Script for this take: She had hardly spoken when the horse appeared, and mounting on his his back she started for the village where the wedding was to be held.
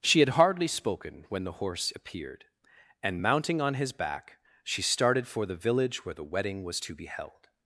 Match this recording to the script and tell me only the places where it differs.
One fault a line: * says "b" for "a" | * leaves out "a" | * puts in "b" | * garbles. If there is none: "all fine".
* leaves out "his"